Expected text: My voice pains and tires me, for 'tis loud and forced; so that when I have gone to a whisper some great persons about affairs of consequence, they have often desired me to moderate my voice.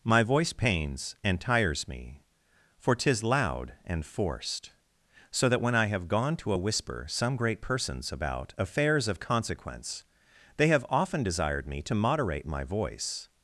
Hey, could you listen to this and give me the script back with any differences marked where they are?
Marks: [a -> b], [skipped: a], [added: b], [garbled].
My voice pains and tires me, for 'tis loud and forced; so that when I have gone to a whisper some great persons about affairs of consequence, they have often desired me to moderate my voice.